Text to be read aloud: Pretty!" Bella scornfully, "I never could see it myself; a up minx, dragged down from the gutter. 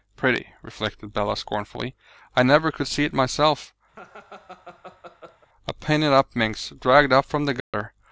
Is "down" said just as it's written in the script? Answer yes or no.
no